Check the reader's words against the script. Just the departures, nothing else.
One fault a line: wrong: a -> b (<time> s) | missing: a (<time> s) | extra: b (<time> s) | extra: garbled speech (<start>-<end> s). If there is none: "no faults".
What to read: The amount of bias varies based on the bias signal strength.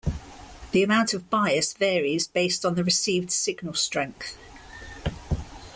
wrong: bias -> received (2.8 s)